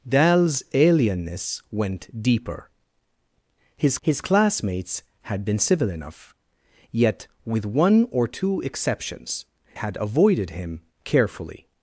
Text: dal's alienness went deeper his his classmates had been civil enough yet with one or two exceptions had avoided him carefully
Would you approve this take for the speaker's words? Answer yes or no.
yes